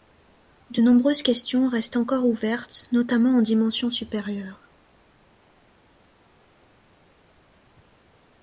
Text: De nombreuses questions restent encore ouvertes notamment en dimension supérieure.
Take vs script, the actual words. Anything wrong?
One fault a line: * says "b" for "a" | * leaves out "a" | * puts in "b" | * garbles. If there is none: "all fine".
all fine